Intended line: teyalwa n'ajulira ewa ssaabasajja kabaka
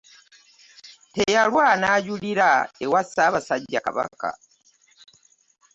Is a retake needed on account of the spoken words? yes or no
no